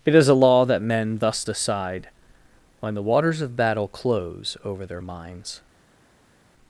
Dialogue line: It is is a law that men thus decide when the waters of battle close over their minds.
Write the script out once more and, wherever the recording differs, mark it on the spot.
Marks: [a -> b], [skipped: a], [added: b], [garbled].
It is [skipped: is] a law that men thus decide when the waters of battle close over their minds.